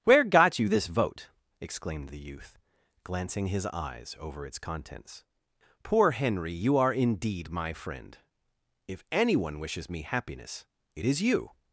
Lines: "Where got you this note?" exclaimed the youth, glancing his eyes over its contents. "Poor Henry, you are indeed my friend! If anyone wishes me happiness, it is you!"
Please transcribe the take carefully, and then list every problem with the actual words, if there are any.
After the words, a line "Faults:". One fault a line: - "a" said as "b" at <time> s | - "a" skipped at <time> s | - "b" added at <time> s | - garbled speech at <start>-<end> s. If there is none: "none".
"Where got you this vote?" exclaimed the youth, glancing his eyes over its contents. "Poor Henry, you are indeed my friend! If anyone wishes me happiness, it is you!"
Faults:
- "note" said as "vote" at 0.9 s